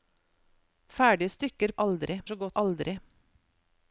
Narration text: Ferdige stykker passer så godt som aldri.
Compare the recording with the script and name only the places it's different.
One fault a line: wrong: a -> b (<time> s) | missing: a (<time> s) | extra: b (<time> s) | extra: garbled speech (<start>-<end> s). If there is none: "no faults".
wrong: passer -> aldri (1.9 s)
missing: som (2.6 s)